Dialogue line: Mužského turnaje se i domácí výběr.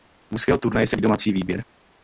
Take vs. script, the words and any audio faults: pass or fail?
pass